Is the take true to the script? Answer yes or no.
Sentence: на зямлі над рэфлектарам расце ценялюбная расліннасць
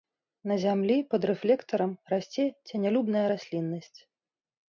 no